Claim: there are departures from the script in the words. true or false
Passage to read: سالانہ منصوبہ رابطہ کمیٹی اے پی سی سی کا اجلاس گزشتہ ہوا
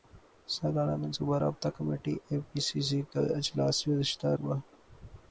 false